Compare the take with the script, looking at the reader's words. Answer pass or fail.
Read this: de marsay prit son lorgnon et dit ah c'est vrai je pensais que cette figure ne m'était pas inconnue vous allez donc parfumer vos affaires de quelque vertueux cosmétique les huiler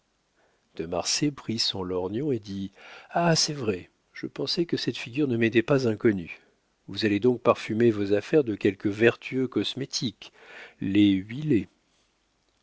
pass